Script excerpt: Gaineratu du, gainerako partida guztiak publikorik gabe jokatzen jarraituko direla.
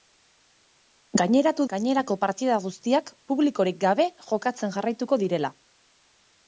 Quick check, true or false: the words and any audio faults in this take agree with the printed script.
false